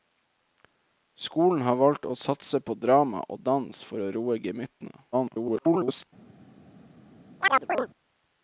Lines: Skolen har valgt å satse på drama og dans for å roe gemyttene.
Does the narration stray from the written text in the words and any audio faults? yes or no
yes